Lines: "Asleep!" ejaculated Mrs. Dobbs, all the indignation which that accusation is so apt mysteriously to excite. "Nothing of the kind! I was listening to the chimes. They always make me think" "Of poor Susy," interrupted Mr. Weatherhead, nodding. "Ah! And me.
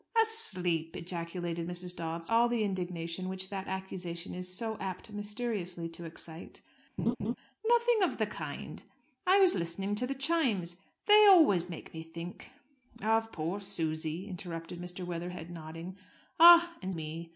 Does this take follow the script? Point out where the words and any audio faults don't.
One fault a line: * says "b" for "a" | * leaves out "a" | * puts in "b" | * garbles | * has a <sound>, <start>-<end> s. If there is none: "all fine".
* has a laugh, 7.0-7.4 s